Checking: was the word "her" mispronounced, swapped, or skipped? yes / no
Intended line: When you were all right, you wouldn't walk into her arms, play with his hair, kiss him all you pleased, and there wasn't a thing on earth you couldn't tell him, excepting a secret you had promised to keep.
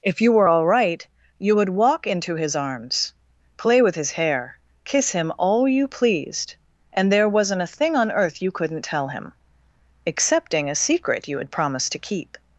yes